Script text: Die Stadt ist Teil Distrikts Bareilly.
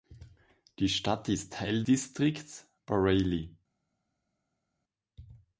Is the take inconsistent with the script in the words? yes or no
no